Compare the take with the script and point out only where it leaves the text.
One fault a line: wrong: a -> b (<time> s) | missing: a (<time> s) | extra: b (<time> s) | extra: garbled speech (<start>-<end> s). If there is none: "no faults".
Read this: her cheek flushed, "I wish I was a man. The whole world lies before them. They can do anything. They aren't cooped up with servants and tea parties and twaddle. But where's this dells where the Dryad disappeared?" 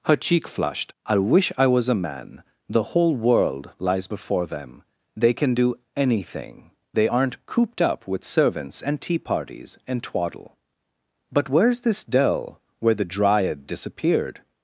wrong: dells -> dell (12.0 s)